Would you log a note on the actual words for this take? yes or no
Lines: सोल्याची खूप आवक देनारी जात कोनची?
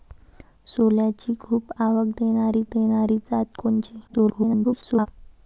yes